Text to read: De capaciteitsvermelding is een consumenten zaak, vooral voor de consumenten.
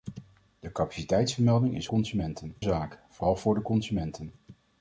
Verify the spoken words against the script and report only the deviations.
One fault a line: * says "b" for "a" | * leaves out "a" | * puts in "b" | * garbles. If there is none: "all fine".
all fine